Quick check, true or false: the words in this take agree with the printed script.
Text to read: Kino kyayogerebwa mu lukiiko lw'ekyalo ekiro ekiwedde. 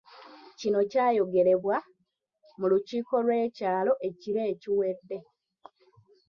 true